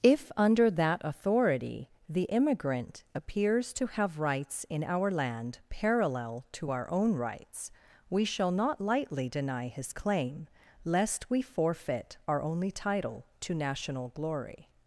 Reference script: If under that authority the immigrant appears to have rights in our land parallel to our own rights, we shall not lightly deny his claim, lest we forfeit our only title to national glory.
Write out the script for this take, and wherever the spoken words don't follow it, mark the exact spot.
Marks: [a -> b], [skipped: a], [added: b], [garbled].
If under that authority the immigrant appears to have rights in our land parallel to our own rights, we shall not lightly deny his claim, lest we forfeit our only title to national glory.